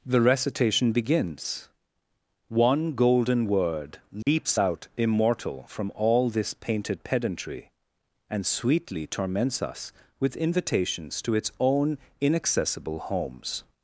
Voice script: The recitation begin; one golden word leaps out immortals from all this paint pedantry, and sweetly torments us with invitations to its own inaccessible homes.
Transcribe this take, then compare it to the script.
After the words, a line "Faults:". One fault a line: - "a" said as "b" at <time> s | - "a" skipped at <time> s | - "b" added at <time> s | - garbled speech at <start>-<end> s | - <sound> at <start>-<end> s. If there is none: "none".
The recitation begins; one golden word leaps out immortal from all this painted pedantry, and sweetly torments us with invitations to its own inaccessible homes.
Faults:
- "begin" said as "begins" at 0.9 s
- dropout at 4.2-4.3 s
- "immortals" said as "immortal" at 5.0 s
- "paint" said as "painted" at 6.5 s